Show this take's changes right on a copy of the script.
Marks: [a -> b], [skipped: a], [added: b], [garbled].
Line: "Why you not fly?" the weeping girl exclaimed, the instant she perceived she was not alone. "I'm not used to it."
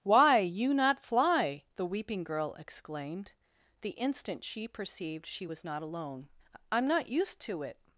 "Why you not fly?" the weeping girl exclaimed, the instant she perceived she was not alone. "I'm not used to it."